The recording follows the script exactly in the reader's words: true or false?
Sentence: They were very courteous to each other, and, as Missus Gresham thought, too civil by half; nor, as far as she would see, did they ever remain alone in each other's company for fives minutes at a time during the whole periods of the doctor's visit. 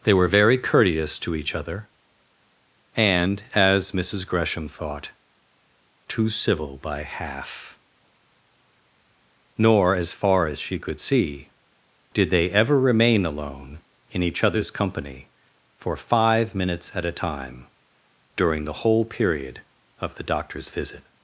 false